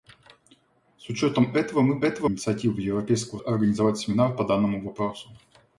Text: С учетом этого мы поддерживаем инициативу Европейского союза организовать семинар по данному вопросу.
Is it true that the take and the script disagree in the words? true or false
true